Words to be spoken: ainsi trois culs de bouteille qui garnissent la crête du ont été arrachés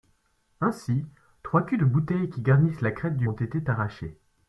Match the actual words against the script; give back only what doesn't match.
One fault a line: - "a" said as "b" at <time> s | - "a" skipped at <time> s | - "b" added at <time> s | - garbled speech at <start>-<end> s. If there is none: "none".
none